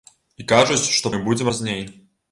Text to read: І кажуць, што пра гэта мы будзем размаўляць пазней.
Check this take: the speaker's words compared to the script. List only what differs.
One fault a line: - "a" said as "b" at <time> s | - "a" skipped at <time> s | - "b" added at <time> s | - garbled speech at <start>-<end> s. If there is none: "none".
- "пра гэта" skipped at 1.1 s
- "размаўляць" skipped at 1.5 s